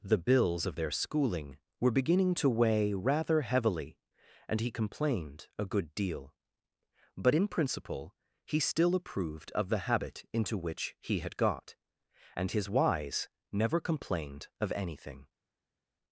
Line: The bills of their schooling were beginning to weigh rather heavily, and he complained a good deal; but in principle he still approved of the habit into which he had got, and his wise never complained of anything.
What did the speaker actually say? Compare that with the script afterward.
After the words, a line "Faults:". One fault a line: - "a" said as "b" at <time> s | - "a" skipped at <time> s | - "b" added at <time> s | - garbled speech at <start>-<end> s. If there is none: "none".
The bills of their schooling were beginning to weigh rather heavily, and he complained a good deal; but in principle he still approved of the habit into which he had got, and his wise never complained of anything.
Faults:
none